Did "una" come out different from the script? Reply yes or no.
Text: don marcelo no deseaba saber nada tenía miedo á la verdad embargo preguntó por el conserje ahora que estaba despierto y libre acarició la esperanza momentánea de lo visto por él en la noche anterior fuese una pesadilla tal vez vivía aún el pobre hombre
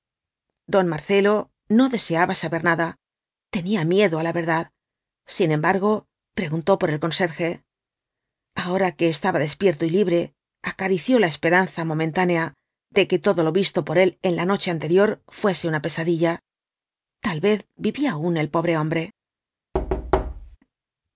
no